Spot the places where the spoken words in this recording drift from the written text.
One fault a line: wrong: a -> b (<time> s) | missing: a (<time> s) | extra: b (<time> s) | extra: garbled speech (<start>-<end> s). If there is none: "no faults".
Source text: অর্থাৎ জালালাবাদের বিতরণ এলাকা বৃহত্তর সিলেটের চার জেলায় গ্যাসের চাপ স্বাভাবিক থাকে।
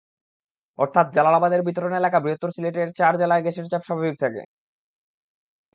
no faults